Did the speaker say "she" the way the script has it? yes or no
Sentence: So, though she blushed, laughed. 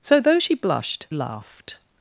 yes